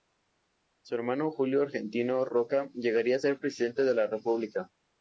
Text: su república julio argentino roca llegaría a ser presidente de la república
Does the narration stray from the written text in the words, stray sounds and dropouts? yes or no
yes